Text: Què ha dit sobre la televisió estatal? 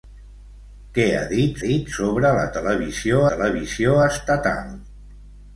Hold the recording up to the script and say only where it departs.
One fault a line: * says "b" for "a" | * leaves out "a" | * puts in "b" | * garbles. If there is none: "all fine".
* puts in "dit"
* puts in "televisió"